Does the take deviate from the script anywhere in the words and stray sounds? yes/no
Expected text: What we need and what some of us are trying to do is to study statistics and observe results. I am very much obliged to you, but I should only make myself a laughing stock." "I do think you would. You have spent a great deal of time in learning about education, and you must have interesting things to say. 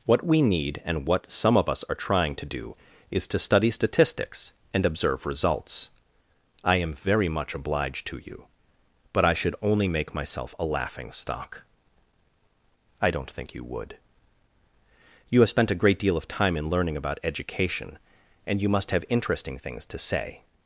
yes